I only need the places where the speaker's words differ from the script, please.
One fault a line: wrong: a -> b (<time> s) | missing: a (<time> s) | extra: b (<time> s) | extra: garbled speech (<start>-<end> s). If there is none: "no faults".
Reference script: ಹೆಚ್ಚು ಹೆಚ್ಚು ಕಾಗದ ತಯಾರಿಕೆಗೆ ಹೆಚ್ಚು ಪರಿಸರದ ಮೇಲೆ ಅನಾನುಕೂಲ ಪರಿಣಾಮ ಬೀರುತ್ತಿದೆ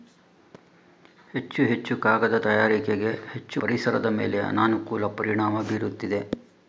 no faults